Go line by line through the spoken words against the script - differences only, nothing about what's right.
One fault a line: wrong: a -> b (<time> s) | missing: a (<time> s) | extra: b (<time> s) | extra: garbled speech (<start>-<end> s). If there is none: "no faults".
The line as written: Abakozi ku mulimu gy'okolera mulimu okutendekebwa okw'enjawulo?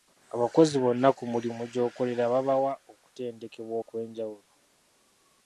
extra: bonna (0.8 s)
wrong: mulimu -> babawa (2.3 s)